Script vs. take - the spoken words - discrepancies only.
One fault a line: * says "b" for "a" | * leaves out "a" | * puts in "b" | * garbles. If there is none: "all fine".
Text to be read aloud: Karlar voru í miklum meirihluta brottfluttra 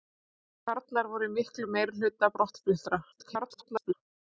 * garbles